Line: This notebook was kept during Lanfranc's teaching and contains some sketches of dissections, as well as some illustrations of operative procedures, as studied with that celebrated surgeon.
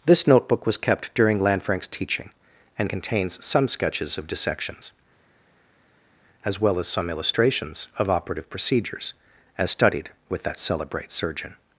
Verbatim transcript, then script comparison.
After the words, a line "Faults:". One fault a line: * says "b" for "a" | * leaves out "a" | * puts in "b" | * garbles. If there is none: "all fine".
This notebook was kept during Lanfranc's teaching and contains some sketches of dissections, as well as some illustrations of operative procedures, as studied with that celebrate surgeon.
Faults:
* says "celebrate" for "celebrated"